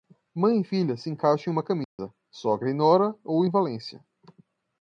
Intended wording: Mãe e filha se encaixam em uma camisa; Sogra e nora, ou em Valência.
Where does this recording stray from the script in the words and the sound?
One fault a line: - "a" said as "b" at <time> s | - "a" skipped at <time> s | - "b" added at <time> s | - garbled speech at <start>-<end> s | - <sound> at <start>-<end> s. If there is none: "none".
- dropout at 1.8-2.0 s